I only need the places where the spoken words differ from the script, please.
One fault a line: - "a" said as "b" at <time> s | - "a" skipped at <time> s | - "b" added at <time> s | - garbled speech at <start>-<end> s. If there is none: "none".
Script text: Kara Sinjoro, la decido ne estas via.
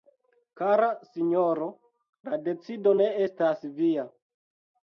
none